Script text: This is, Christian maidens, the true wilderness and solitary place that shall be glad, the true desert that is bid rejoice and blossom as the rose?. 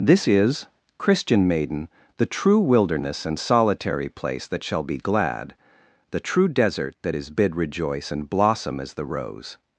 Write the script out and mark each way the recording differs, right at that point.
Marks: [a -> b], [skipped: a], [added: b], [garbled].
This is, Christian [maidens, -> maiden] the true wilderness and solitary place that shall be glad, the true desert that is bid rejoice and blossom as the rose?.